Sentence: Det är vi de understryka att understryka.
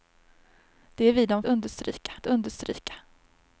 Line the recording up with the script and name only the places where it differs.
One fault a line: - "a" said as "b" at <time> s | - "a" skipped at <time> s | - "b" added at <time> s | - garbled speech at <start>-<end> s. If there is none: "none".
none